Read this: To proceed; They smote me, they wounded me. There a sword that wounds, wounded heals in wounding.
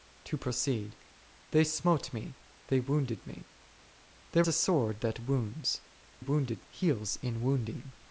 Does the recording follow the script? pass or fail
pass